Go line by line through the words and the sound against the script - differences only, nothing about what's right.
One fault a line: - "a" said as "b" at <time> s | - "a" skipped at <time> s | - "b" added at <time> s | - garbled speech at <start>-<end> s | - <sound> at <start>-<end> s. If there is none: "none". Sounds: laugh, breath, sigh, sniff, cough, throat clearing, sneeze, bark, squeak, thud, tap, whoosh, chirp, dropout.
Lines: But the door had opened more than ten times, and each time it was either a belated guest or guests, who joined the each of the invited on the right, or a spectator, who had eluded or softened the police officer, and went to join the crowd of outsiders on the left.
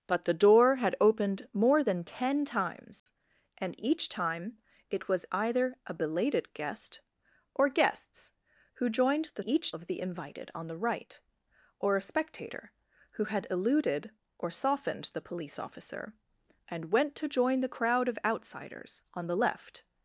- dropout at 3.0-3.1 s